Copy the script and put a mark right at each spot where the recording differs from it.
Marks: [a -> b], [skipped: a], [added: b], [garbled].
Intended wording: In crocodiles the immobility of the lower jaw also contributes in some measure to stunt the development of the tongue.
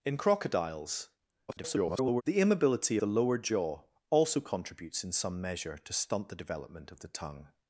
In crocodiles [garbled] the immobility [skipped: of] the lower jaw also contributes in some measure to stunt the development of the tongue.